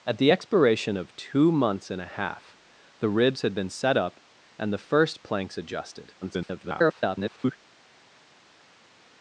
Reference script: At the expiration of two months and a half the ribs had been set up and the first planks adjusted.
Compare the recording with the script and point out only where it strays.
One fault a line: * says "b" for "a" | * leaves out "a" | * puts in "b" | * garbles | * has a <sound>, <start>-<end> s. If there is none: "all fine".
* garbles